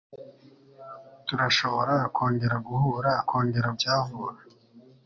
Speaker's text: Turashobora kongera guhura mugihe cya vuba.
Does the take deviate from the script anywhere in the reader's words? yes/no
yes